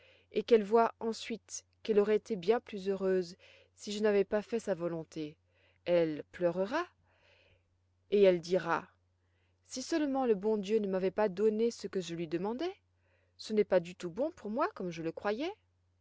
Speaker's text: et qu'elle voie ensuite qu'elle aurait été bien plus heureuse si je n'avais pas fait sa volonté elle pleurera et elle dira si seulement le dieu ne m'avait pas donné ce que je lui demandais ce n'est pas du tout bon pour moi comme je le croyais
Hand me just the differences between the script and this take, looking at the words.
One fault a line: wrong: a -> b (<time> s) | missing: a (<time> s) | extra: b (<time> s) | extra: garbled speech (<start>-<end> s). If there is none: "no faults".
extra: bon (10.4 s)